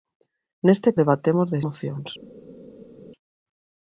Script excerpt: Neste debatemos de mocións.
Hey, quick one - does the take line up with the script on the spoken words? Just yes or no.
yes